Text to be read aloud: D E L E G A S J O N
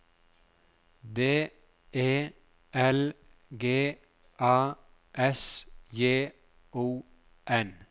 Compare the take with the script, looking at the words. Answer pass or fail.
fail